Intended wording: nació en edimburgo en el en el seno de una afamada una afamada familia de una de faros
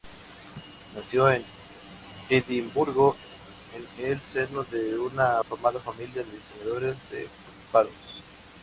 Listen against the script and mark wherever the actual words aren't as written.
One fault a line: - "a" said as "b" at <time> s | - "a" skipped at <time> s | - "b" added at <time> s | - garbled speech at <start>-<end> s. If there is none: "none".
- "en el" skipped at 4.2 s
- "una afamada" skipped at 5.8 s
- "una" said as "diseñadores" at 6.3 s